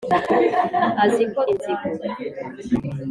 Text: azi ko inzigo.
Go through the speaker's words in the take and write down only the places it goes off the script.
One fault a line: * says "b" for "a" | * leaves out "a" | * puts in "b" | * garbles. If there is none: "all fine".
all fine